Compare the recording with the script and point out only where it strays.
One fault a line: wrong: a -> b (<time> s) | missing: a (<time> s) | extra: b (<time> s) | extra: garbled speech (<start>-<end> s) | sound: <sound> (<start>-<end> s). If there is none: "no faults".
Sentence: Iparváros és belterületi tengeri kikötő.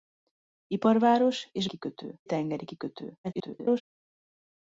wrong: belterületi -> kikötő (1.6 s)
extra: garbled speech (3.2-3.8 s)